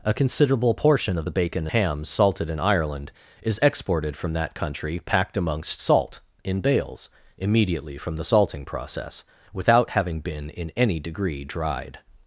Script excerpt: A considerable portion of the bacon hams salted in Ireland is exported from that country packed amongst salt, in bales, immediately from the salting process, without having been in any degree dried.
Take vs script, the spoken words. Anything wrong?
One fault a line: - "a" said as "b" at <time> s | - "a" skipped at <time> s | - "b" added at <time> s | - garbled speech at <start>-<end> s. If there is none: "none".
none